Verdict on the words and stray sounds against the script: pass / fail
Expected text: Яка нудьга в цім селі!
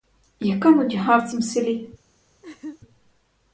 fail